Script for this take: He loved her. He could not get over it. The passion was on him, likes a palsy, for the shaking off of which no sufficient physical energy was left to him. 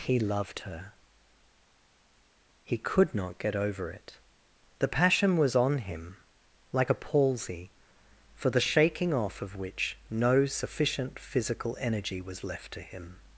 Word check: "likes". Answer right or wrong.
wrong